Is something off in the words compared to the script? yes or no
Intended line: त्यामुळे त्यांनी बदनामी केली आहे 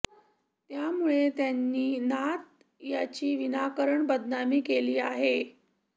yes